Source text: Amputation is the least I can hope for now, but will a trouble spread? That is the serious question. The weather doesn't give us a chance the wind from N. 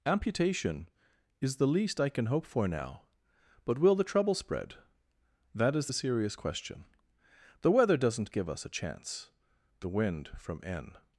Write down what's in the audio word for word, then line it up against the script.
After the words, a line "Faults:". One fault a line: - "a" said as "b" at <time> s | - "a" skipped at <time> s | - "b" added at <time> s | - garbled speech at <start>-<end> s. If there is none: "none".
Amputation is the least I can hope for now, but will the trouble spread? That is the serious question. The weather doesn't give us a chance the wind from N.
Faults:
- "a" said as "the" at 3.9 s